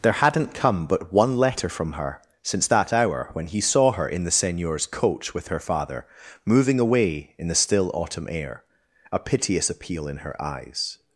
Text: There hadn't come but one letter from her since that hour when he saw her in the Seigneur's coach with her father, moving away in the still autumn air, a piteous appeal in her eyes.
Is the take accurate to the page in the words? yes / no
yes